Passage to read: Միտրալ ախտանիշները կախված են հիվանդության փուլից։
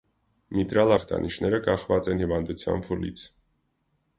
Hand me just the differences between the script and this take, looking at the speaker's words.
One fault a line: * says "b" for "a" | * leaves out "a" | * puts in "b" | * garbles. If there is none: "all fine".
all fine